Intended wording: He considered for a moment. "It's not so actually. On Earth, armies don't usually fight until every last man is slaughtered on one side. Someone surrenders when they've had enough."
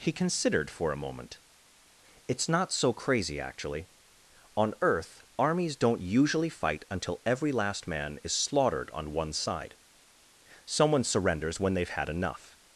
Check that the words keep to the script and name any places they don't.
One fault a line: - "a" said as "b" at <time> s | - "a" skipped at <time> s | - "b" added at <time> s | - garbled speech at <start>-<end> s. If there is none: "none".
- "crazy" added at 2.9 s